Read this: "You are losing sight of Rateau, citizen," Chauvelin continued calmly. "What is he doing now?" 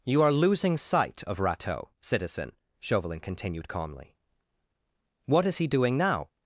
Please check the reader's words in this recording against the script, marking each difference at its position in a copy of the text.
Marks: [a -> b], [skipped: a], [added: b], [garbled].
"You are losing sight of Rateau, citizen," Chauvelin continued calmly. "What is he doing now?"